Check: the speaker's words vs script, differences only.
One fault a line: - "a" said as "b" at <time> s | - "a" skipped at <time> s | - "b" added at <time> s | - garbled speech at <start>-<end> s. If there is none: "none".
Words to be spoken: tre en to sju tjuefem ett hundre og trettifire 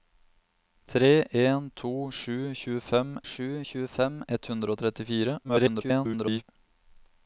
- "sju tjuefem" added at 3.3 s
- garbled speech at 5.4-6.4 s